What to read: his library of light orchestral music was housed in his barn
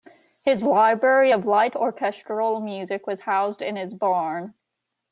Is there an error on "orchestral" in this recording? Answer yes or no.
no